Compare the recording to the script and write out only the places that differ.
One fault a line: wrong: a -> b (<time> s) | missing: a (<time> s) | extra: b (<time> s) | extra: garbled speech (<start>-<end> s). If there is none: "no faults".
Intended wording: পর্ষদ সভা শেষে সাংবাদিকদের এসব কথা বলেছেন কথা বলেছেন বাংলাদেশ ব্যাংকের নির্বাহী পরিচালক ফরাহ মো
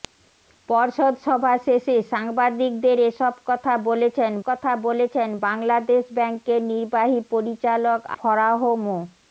no faults